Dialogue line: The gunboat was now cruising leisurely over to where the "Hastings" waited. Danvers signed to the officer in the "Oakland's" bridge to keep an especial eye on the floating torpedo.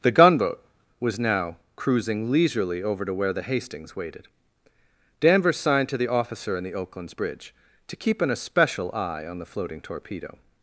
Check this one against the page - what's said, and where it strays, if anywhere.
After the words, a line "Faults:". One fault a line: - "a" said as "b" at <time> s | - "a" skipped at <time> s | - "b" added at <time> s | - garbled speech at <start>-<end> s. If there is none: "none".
The gunboat was now cruising leisurely over to where the "Hastings" waited. Danvers signed to the officer in the "Oakland's" bridge to keep an especial eye on the floating torpedo.
Faults:
none